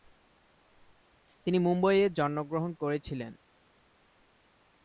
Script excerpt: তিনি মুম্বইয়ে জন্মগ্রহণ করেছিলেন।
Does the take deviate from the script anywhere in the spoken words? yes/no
no